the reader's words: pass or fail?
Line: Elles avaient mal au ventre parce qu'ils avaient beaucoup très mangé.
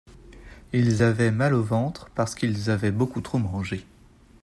fail